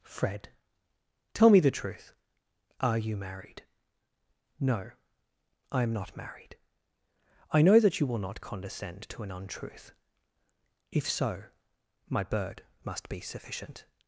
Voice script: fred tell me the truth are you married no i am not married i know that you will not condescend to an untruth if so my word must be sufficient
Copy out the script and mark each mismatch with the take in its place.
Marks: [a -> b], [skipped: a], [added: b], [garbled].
fred tell me the truth are you married no i am not married i know that you will not condescend to an untruth if so my [word -> bird] must be sufficient